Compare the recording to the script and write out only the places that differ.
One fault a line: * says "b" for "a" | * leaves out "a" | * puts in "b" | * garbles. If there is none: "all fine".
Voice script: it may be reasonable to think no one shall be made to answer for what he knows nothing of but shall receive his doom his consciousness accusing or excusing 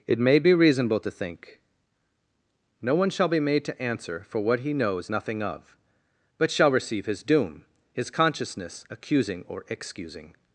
all fine